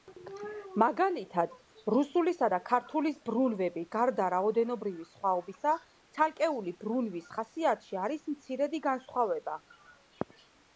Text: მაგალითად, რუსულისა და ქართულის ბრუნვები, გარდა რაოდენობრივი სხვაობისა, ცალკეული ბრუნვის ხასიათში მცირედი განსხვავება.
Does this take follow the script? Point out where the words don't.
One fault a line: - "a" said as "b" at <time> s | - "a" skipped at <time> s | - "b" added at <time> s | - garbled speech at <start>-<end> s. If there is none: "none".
- "არის" added at 8.1 s